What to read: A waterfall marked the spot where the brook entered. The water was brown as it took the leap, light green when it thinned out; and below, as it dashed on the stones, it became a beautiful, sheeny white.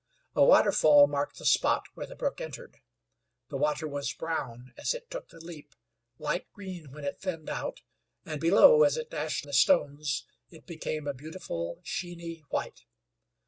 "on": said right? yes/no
no